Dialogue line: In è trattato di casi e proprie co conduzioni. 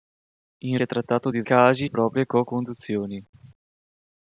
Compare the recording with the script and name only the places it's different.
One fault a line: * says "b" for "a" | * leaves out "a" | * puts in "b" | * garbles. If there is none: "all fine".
all fine